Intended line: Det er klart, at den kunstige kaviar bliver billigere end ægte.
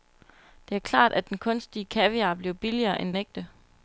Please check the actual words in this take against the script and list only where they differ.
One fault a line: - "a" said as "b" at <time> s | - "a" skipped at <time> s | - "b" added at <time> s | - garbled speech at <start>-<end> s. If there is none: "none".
none